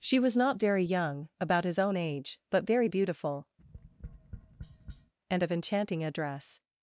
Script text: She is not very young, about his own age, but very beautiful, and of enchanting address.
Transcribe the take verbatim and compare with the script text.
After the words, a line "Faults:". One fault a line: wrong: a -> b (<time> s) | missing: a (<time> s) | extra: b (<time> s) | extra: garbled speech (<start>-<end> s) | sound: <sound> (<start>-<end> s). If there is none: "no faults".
She was not very young, about his own age, but very beautiful, and of enchanting address.
Faults:
wrong: is -> was (0.2 s)
sound: tap (3.6-5.1 s)